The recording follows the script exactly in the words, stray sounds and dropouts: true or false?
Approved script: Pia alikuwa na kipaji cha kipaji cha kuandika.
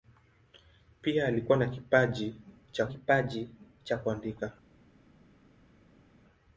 true